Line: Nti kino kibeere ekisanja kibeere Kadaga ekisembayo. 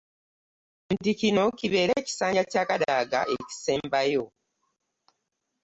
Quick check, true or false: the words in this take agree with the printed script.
false